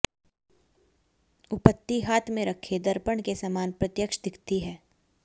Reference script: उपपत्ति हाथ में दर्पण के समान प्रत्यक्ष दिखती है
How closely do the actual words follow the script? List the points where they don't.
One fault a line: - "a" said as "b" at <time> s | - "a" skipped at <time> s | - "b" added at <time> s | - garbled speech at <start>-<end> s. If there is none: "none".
- "रखे" added at 2.5 s